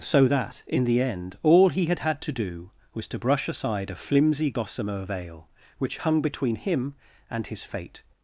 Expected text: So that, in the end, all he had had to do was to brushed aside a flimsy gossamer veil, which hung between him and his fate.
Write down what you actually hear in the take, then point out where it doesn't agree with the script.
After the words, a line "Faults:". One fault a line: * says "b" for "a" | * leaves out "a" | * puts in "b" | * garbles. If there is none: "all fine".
So that, in the end, all he had had to do was to brush aside a flimsy gossamer veil, which hung between him and his fate.
Faults:
* says "brush" for "brushed"